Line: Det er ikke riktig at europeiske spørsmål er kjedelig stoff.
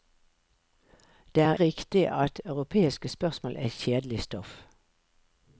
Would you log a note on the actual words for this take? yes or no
yes